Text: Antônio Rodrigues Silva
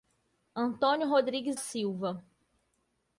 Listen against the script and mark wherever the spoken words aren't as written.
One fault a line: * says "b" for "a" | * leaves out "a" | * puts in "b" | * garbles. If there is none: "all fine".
all fine